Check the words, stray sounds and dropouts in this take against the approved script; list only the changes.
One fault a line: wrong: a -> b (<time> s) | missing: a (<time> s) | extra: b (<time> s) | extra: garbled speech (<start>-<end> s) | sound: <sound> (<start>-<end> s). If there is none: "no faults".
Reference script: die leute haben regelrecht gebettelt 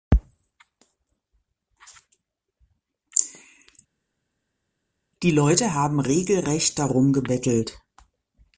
extra: darum (6.8 s)